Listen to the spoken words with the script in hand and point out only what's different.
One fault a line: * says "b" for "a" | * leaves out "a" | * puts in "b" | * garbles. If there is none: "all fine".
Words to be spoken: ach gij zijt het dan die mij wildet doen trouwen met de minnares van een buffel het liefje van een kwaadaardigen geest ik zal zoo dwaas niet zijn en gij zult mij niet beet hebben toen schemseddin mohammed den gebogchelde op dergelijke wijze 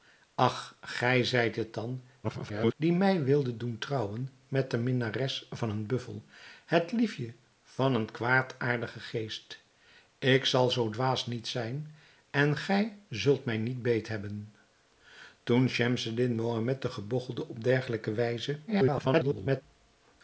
* garbles
* garbles